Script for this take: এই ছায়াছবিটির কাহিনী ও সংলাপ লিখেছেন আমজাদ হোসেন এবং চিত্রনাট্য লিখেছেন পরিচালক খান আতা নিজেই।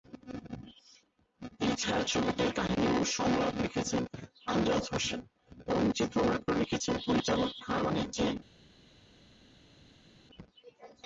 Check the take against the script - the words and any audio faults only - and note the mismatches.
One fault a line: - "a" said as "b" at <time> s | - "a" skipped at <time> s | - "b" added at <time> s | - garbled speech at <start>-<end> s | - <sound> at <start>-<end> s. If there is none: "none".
- "আতা" skipped at 7.8 s